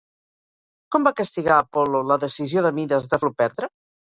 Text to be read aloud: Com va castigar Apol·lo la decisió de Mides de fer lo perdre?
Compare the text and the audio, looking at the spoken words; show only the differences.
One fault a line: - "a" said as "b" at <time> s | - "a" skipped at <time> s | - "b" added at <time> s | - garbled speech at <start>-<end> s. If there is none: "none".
- "fer" skipped at 3.2 s